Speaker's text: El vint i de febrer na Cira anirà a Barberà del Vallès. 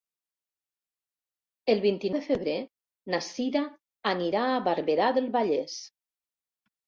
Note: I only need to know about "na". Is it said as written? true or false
true